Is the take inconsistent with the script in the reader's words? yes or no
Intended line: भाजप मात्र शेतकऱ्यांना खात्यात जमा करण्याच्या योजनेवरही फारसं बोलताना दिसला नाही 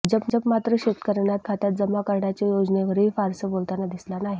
no